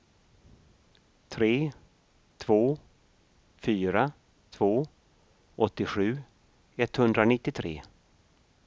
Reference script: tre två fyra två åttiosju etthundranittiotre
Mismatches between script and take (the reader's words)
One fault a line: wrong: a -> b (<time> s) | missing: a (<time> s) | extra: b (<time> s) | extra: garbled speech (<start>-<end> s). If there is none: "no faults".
no faults